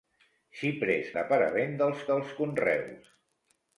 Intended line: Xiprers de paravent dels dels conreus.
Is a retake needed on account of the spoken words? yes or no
no